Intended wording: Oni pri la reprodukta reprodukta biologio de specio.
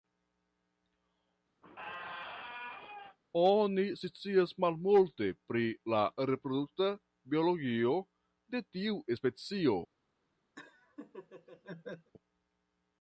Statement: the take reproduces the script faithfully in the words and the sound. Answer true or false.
false